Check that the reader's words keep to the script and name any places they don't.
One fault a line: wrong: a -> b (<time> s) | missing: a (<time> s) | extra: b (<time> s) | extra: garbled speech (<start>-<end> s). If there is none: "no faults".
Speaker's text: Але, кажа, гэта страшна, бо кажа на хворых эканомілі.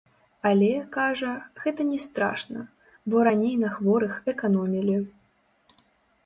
extra: не (1.9 s)
wrong: кажа -> раней (3.3 s)